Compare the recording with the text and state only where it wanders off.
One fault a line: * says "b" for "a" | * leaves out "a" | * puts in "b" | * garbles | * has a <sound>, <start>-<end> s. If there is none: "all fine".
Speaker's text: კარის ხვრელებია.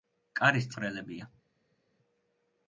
all fine